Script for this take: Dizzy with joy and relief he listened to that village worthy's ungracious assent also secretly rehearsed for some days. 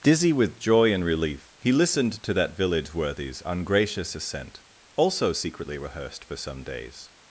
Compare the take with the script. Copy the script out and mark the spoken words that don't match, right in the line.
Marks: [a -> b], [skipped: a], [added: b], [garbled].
Dizzy with joy and relief he listened to that village worthy's ungracious assent also secretly rehearsed for some days.